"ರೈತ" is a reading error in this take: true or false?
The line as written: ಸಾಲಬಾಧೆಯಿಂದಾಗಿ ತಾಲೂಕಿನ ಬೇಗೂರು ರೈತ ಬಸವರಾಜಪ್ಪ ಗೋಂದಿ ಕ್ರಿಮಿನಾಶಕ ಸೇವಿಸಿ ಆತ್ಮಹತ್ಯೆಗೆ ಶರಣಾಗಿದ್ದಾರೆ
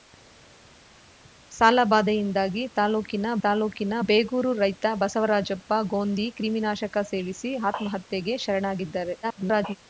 false